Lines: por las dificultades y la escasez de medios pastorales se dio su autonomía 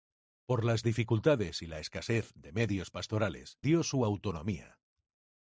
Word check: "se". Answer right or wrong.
wrong